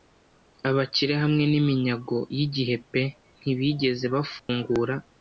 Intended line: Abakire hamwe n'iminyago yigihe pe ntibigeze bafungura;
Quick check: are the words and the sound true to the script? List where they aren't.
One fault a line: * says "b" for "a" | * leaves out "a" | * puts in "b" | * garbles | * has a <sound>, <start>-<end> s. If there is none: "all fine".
* has a dropout, 4.4-4.5 s